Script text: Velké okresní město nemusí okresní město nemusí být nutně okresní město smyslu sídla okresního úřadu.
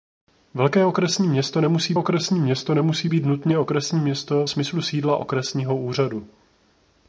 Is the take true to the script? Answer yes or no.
yes